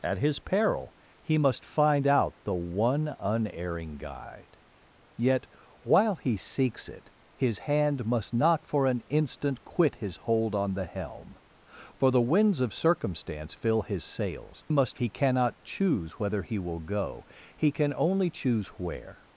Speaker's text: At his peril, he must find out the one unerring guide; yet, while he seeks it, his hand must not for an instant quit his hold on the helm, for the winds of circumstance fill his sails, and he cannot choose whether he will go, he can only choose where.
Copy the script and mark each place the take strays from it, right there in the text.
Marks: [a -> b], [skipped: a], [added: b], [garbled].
At his peril, he must find out the one unerring guide; yet, while he seeks it, his hand must not for an instant quit his hold on the helm, for the winds of circumstance fill his sails, [and -> must] he cannot choose whether he will go, he can only choose where.